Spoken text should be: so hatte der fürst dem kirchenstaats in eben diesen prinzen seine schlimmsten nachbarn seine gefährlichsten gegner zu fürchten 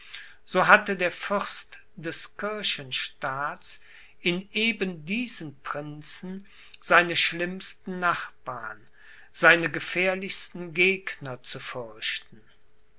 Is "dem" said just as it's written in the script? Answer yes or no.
no